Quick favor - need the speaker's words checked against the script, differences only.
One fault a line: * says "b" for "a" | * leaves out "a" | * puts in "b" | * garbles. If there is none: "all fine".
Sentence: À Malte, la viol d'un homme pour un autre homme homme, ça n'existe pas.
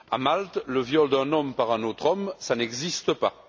* says "le" for "la"
* says "par" for "pour"
* leaves out "homme"